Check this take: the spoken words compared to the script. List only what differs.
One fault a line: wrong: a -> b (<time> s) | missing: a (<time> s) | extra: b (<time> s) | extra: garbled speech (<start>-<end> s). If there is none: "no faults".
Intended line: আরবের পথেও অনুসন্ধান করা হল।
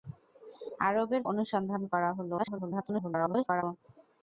missing: পথেও (1.2 s)
extra: garbled speech (2.4-3.6 s)